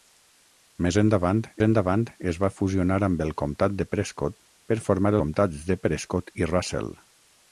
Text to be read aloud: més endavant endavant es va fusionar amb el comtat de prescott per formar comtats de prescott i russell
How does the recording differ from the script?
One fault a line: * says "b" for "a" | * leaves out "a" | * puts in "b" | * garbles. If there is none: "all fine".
all fine